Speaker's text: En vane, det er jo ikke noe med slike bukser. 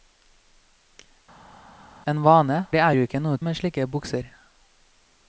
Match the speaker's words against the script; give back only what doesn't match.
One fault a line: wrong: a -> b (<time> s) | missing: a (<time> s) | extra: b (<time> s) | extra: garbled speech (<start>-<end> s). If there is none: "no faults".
no faults